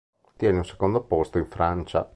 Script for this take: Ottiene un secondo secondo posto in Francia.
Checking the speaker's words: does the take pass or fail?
fail